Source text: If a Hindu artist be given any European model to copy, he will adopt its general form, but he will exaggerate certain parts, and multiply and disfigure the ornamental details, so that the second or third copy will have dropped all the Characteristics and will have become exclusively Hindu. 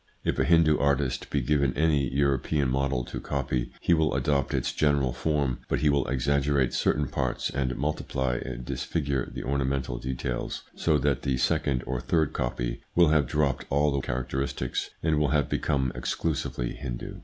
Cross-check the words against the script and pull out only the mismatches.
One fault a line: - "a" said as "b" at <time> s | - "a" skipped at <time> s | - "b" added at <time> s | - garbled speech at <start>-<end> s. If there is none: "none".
none